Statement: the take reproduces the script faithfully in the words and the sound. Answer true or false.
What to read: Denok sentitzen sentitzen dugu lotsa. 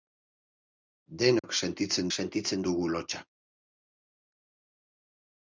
false